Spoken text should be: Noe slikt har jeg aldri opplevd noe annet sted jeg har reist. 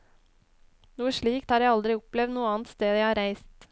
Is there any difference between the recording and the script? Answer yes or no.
no